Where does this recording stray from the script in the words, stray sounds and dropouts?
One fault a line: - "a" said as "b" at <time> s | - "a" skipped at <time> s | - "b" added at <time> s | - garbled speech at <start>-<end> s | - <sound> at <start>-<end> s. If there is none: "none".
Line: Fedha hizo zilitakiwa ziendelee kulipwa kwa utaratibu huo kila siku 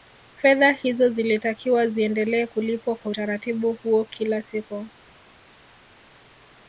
none